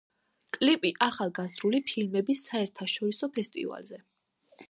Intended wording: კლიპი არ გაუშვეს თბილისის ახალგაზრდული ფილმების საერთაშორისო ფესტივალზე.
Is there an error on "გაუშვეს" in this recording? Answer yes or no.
yes